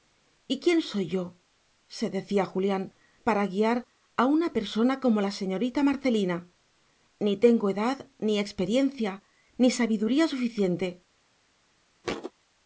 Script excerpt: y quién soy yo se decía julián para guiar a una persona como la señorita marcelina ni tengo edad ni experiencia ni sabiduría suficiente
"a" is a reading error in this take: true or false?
false